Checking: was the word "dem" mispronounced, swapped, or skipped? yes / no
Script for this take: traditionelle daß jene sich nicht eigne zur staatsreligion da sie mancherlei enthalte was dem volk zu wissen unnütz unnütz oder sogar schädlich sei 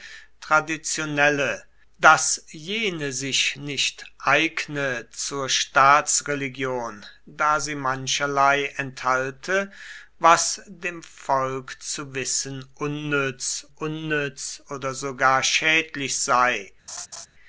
no